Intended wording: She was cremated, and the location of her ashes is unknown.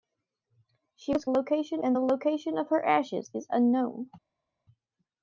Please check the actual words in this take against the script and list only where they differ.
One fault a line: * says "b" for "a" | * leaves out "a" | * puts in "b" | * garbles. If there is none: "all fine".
* says "location" for "cremated"